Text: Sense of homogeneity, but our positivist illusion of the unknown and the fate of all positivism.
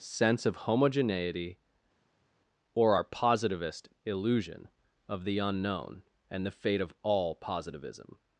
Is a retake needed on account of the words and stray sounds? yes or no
yes